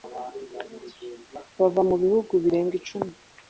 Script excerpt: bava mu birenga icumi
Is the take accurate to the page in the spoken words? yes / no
no